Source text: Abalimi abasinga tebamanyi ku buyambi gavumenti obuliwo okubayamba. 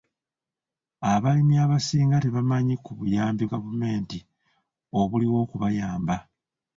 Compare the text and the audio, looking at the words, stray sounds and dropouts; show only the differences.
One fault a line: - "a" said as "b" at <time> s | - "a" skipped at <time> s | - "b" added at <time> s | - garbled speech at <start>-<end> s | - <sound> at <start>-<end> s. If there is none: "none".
none